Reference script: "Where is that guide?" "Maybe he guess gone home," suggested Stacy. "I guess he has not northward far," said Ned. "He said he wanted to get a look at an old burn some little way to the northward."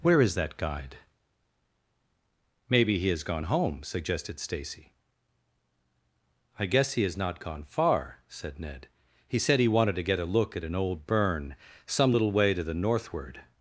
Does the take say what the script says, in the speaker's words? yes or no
no